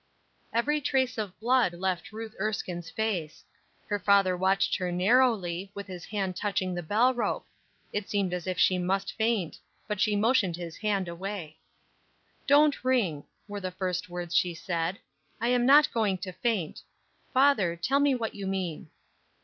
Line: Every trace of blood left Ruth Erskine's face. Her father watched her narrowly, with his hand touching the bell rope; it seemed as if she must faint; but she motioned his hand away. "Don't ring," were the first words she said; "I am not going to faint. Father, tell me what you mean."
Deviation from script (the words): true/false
false